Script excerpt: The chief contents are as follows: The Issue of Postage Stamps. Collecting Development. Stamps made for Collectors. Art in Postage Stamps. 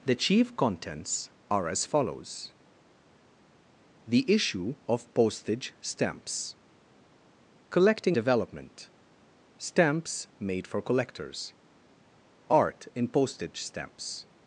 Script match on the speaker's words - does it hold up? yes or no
yes